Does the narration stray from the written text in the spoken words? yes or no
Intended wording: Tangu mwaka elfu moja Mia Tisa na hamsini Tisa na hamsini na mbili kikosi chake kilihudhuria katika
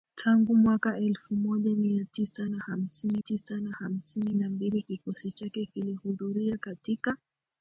no